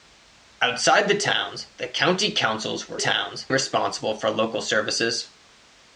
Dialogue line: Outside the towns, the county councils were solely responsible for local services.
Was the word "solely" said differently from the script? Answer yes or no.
yes